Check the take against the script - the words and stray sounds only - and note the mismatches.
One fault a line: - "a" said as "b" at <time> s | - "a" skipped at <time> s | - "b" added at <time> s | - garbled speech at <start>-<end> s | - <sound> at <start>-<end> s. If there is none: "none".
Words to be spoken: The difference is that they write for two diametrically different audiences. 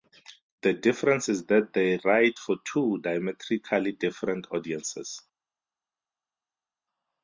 none